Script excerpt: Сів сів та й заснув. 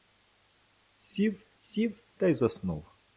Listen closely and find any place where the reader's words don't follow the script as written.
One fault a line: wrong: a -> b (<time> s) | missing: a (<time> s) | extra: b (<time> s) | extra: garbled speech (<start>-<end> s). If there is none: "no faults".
no faults